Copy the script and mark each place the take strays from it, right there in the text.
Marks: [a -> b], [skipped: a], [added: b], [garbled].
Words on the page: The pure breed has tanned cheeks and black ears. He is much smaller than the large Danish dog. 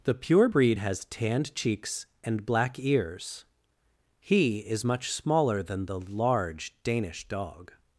The pure breed has tanned cheeks and black ears. He is much smaller than the large Danish dog.